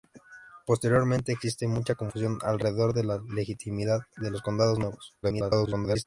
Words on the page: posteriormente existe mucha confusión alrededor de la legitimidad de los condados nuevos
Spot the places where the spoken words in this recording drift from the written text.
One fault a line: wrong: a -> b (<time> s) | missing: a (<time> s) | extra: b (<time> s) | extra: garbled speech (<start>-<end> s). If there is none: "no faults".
extra: garbled speech (5.2-6.1 s)